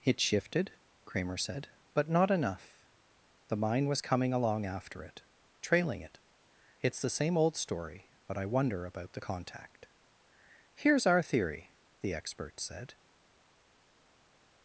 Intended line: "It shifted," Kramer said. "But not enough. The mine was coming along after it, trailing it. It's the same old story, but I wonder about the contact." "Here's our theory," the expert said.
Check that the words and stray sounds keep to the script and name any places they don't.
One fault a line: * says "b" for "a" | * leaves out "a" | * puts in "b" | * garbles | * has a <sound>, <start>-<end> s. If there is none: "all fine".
all fine